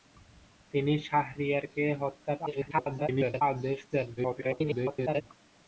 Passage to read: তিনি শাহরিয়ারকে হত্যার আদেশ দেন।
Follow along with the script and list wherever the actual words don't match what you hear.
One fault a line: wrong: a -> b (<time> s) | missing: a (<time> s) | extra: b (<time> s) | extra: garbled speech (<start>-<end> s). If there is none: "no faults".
extra: garbled speech (2.5-3.4 s)
extra: garbled speech (4.2-5.2 s)